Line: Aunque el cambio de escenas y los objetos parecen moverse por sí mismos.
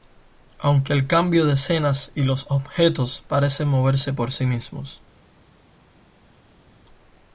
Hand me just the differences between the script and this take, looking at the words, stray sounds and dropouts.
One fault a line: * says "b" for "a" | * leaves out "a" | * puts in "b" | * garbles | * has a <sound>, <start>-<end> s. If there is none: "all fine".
all fine